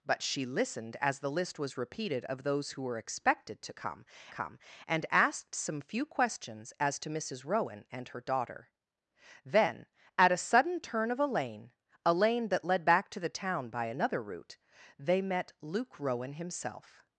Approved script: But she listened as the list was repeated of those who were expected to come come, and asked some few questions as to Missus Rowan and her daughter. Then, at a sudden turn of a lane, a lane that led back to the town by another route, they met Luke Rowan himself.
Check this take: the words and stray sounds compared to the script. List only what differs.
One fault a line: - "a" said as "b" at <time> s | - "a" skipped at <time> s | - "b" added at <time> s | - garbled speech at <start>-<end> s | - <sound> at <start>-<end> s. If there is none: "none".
none